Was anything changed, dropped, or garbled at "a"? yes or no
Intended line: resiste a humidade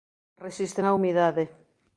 no